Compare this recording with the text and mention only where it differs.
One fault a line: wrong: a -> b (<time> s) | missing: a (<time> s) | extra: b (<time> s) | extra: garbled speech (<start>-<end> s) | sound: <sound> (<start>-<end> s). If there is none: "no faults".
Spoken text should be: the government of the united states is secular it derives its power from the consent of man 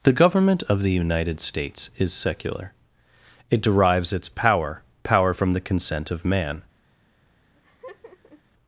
extra: power (5.0 s)
sound: laugh (7.5-8.4 s)